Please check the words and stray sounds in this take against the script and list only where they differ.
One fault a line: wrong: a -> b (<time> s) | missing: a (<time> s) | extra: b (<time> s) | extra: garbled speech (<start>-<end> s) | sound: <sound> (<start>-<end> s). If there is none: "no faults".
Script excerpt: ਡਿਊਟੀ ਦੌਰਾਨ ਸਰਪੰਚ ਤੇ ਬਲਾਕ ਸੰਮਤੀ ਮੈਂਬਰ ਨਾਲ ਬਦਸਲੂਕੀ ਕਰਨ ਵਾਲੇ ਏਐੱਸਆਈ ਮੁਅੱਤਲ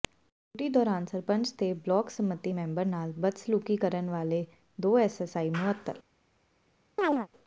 extra: ਦੋ (4.8 s)
sound: chirp (7.0-7.3 s)